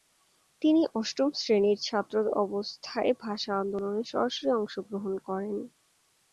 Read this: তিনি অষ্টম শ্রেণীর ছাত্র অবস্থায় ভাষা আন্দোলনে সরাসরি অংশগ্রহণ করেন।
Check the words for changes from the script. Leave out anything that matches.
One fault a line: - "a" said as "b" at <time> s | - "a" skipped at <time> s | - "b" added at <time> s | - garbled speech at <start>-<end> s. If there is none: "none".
none